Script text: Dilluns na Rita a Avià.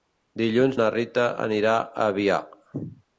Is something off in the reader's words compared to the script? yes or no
yes